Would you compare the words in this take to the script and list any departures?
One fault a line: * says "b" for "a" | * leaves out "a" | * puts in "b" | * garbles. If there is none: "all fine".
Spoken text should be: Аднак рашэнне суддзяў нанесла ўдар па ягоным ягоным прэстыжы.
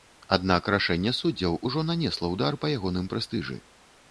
* puts in "ужо"
* leaves out "ягоным"